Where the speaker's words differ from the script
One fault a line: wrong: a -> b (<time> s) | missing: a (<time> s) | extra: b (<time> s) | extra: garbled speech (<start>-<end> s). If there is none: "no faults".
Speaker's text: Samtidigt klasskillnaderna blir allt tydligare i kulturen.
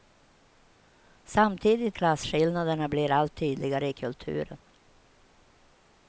no faults